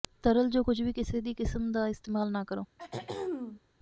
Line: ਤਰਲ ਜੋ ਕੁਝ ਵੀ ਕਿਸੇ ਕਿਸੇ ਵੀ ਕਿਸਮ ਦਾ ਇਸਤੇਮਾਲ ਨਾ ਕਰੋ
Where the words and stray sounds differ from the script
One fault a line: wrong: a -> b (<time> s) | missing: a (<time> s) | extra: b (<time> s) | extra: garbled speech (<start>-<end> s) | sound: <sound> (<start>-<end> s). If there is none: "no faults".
missing: ਕਿਸੇ (1.2 s)
sound: throat clearing (2.8-3.6 s)